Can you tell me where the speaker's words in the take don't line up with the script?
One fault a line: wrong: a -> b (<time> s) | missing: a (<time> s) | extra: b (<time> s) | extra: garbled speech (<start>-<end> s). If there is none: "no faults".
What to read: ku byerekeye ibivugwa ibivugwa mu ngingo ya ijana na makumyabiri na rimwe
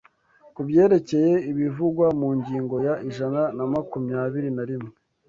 missing: ibivugwa (2.0 s)